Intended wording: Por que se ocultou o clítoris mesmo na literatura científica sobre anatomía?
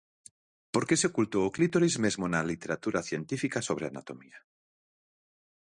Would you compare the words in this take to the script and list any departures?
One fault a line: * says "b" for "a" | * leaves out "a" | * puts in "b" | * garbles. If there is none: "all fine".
all fine